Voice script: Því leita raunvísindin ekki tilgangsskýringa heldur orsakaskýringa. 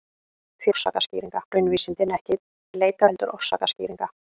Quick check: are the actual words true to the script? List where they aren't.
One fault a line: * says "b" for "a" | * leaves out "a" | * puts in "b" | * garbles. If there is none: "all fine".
* says "orsakaskýringa" for "leita"
* says "leita" for "tilgangsskýringa"